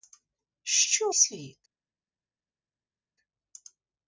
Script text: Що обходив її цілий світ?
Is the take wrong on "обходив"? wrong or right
wrong